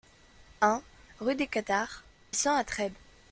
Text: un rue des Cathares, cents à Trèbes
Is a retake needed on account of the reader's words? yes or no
no